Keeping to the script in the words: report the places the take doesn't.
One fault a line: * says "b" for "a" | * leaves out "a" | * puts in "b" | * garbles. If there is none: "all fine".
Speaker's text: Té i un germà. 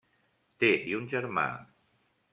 all fine